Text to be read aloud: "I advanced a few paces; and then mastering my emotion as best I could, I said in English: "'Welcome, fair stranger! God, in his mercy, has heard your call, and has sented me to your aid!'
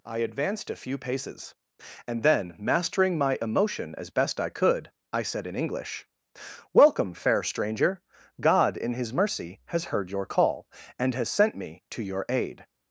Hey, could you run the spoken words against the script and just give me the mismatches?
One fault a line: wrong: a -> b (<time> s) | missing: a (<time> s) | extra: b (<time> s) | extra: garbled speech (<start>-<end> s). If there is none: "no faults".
wrong: sented -> sent (11.3 s)